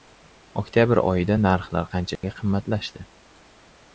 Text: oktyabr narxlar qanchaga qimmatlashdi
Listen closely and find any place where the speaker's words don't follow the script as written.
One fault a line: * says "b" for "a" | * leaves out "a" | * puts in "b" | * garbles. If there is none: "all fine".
* puts in "oyida"